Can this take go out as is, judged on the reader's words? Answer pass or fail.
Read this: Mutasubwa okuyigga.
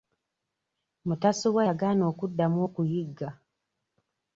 fail